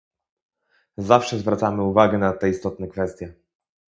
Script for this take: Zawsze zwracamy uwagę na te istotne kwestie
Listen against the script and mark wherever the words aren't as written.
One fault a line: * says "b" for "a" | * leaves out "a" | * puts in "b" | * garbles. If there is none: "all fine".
all fine